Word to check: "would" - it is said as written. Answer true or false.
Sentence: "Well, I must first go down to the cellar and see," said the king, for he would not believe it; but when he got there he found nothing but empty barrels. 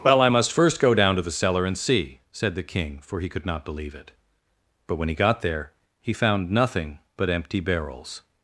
false